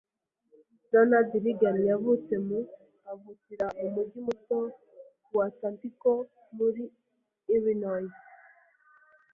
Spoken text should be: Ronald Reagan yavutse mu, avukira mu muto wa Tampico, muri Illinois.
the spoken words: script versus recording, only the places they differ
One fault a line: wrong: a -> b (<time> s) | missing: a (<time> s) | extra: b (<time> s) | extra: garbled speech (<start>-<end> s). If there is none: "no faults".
extra: mujyi (4.0 s)